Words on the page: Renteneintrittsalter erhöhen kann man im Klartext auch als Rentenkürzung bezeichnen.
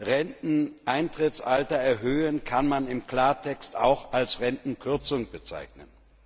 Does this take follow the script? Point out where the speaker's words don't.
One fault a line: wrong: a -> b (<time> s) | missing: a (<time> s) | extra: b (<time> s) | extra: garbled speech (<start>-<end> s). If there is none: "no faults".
no faults